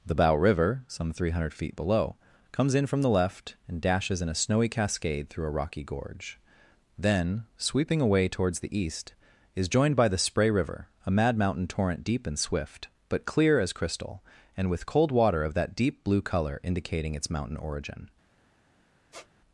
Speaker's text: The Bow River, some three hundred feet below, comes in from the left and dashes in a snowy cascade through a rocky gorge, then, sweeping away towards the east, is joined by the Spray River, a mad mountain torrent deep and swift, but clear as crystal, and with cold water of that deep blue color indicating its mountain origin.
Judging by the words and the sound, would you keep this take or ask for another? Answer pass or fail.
fail